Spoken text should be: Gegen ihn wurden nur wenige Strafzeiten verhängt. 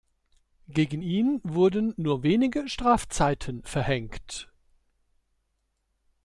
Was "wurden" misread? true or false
false